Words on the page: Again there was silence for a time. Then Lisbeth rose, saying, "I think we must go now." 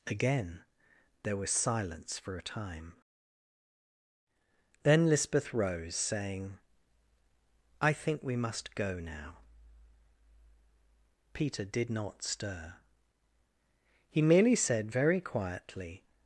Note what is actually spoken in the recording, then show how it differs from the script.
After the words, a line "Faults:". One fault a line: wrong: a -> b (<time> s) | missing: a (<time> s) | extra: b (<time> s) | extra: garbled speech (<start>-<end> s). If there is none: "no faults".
Again there was silence for a time. Then Lisbeth rose, saying, "I think we must go now." Peter did not stir. He merely said very quietly
Faults:
extra: Peter did not stir He merely said very quietly (11.3 s)